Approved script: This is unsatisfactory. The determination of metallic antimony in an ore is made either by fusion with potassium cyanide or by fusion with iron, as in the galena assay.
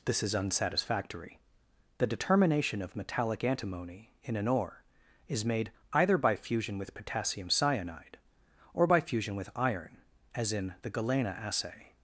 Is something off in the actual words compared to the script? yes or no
no